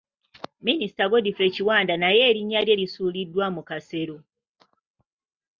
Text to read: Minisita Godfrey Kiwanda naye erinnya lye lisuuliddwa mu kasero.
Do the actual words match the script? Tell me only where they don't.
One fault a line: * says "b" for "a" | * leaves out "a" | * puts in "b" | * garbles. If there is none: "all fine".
all fine